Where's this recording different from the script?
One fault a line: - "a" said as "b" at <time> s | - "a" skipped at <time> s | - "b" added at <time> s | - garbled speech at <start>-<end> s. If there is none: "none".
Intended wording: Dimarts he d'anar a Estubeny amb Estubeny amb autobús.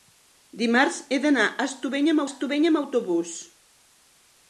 none